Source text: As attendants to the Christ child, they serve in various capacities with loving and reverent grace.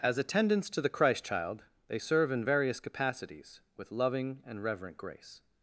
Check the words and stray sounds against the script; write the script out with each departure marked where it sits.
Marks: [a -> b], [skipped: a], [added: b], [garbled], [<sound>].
As attendants to the Christ child, they serve in various capacities with loving and reverent grace.